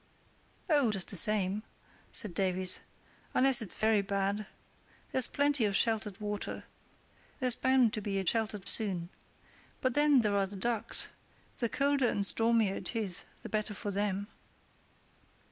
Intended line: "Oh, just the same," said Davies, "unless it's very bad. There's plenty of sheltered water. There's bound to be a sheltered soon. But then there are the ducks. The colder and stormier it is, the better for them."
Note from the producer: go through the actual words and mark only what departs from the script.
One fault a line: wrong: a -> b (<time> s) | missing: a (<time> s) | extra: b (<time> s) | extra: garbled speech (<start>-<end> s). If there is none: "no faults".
no faults